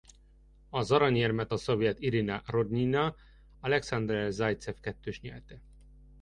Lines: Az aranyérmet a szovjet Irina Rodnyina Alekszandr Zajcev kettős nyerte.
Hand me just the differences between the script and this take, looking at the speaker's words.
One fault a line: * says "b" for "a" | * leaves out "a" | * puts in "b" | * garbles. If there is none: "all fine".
all fine